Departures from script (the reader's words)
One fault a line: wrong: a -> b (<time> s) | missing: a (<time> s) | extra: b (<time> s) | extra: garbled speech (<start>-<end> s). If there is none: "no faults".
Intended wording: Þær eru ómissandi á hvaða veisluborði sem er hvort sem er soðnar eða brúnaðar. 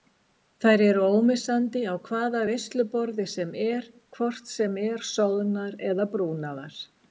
no faults